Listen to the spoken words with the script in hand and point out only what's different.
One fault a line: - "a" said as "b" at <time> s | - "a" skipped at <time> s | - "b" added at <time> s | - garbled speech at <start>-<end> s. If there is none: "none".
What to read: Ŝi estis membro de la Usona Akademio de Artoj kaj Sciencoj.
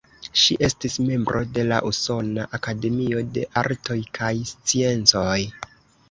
none